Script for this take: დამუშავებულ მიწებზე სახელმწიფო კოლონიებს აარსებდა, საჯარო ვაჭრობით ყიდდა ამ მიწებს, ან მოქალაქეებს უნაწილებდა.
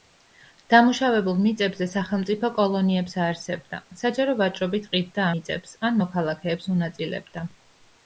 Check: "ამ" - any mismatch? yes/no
yes